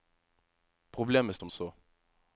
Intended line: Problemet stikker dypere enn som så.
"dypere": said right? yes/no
no